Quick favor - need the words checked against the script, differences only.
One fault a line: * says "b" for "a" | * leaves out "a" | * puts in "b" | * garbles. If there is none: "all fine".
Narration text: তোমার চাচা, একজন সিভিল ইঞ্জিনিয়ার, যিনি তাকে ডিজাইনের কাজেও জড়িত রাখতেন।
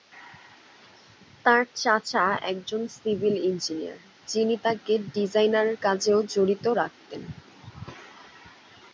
* says "তার" for "তোমার"